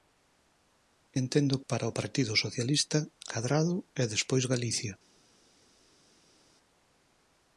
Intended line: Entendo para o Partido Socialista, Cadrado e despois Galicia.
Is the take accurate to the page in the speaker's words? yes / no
yes